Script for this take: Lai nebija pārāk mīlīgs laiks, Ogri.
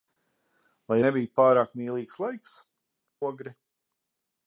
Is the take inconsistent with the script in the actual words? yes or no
no